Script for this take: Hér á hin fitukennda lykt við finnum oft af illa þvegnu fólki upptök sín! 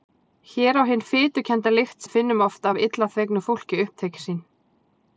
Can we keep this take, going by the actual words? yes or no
yes